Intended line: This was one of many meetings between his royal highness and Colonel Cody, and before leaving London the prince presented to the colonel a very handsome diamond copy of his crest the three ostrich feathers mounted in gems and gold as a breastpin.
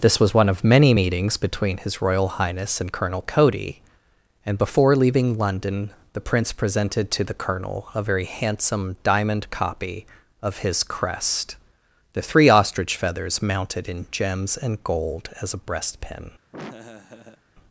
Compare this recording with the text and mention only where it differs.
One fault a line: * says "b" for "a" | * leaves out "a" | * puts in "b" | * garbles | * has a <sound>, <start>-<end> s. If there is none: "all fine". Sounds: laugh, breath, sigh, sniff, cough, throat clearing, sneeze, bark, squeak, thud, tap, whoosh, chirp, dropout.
* has a laugh, 16.5-17.4 s